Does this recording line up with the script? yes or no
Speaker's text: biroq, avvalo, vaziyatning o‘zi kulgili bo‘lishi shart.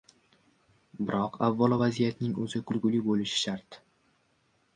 yes